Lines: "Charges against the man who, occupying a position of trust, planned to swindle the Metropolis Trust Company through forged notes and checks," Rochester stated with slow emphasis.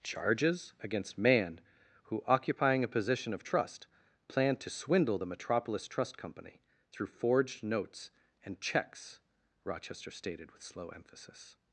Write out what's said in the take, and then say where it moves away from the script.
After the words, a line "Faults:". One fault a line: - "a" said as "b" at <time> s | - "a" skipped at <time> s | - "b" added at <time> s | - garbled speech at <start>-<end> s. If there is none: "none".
"Charges against man who, occupying a position of trust, planned to swindle the Metropolis Trust Company through forged notes and checks," Rochester stated with slow emphasis.
Faults:
- "the" skipped at 1.2 s